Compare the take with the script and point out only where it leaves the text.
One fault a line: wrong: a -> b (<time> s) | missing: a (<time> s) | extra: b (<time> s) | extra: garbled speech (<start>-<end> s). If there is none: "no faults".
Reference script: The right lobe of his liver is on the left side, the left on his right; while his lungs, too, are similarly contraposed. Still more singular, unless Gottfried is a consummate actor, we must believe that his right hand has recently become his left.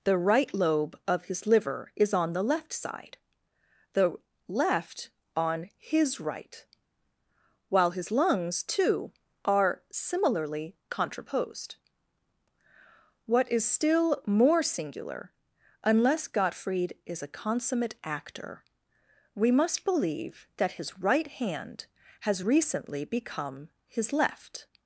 extra: What is (13.3 s)